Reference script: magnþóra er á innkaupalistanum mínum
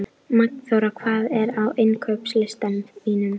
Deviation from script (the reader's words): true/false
true